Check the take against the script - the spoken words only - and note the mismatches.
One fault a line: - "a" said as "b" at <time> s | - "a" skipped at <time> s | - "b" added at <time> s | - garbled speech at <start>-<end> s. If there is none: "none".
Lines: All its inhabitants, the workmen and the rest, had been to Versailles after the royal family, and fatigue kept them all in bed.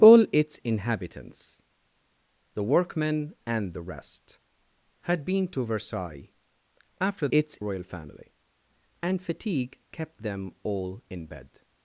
- "the" said as "its" at 7.3 s